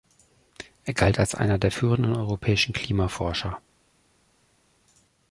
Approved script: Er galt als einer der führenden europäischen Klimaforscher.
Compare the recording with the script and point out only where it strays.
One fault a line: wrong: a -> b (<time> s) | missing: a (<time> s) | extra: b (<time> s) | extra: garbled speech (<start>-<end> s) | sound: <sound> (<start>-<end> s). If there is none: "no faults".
no faults